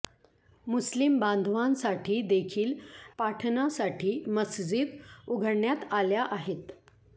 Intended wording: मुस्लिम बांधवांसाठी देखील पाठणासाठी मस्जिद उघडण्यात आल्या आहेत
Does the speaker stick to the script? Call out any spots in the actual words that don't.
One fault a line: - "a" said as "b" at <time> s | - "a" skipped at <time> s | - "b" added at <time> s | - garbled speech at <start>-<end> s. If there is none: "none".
none